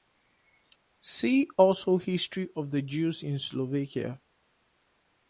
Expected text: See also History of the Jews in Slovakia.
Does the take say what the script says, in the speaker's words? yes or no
yes